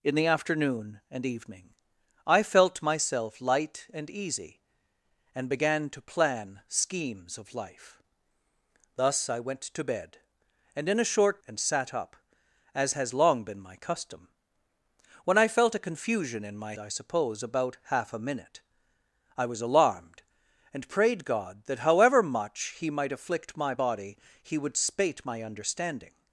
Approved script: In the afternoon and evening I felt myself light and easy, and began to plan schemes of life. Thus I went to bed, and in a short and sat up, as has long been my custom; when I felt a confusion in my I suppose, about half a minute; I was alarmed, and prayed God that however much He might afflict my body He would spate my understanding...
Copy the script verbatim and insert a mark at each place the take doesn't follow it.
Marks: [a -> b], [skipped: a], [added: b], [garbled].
In the afternoon and evening I felt myself light and easy, and began to plan schemes of life. Thus I went to bed, and in a short and sat up, as has long been my custom; when I felt a confusion in my I suppose, about half a minute; I was alarmed, and prayed God that however much He might afflict my body He would spate my understanding...